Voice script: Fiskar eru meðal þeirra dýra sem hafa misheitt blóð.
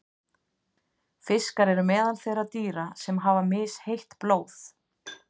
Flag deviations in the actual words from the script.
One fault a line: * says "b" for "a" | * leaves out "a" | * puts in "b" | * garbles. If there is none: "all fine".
all fine